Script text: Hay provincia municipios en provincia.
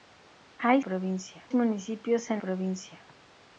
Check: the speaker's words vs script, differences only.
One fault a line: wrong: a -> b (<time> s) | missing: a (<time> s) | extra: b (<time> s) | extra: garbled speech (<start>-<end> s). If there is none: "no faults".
no faults